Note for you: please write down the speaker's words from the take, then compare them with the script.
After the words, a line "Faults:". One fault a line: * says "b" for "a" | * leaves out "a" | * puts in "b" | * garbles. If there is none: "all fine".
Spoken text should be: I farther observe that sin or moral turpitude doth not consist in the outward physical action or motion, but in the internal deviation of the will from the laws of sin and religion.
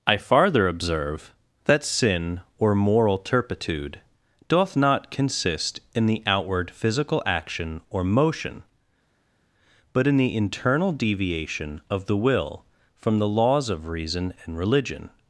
I farther observe that sin or moral turpitude doth not consist in the outward physical action or motion, but in the internal deviation of the will from the laws of reason and religion.
Faults:
* says "reason" for "sin"